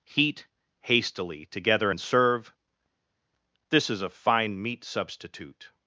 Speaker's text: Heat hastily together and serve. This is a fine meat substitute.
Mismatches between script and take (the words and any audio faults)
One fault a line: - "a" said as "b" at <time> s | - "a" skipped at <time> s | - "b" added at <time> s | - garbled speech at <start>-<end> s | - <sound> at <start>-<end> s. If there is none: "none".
none